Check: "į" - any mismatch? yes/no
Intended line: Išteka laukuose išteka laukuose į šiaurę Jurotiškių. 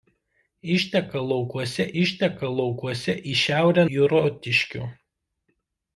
no